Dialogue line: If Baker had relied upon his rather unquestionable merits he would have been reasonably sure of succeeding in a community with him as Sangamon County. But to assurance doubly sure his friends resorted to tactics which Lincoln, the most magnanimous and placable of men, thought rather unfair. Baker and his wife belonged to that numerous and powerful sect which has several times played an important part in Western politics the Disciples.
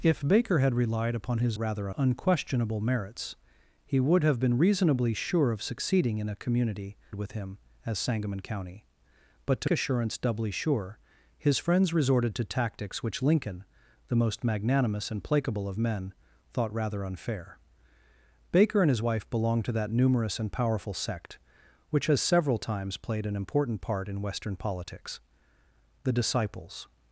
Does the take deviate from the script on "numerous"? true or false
false